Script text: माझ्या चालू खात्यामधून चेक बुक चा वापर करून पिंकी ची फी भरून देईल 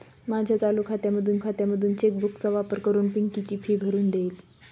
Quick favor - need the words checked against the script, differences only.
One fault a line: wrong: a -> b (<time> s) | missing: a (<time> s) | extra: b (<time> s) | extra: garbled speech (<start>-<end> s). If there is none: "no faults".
extra: खात्यामधून (1.4 s)